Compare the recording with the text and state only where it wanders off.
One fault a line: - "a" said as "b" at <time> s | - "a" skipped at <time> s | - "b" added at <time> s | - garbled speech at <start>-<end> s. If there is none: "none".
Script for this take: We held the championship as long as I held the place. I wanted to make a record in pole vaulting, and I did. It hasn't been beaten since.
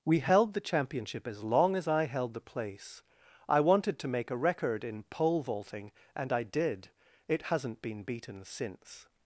none